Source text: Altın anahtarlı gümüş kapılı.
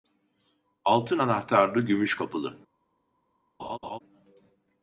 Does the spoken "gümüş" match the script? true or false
true